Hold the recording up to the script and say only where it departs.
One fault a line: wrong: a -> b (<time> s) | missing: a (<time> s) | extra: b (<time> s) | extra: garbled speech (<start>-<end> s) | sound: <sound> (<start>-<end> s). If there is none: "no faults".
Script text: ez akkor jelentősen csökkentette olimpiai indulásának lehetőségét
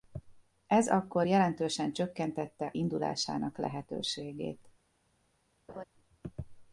missing: olimpiai (2.7 s)
sound: laugh (5.7-5.8 s)